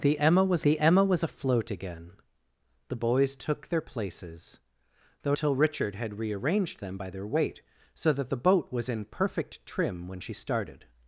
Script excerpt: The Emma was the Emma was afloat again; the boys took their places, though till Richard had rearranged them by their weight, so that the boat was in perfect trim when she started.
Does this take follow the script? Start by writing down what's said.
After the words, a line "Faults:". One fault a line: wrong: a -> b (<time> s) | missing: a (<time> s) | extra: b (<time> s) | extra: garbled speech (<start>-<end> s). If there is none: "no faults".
The Emma was the Emma was afloat again; the boys took their places, though till Richard had rearranged them by their weight, so that the boat was in perfect trim when she started.
Faults:
no faults